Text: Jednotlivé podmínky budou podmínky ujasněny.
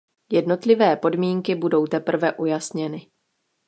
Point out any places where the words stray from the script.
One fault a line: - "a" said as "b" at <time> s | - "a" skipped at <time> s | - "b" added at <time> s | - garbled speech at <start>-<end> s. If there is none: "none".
- "podmínky" said as "teprve" at 1.8 s